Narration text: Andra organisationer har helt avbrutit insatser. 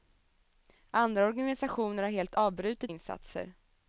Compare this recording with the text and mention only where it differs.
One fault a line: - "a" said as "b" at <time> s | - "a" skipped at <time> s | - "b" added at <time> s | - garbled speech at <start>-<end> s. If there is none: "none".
none